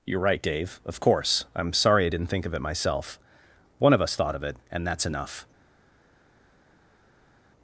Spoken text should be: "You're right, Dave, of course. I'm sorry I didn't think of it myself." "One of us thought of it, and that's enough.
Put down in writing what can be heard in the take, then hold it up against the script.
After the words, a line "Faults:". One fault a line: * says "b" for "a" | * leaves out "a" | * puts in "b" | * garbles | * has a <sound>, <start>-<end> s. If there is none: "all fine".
"You're right, Dave, of course. I'm sorry I didn't think of it myself." "One of us thought of it, and that's enough.
Faults:
all fine